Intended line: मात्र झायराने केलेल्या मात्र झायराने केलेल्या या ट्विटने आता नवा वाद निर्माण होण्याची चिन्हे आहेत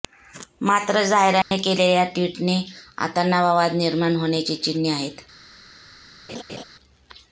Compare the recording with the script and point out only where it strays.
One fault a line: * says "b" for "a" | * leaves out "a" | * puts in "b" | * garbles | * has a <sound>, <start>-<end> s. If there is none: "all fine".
* has a dropout, 1.4-1.5 s
* leaves out "मात्र झायराने केलेल्या"
* has a laugh, 6.3-6.6 s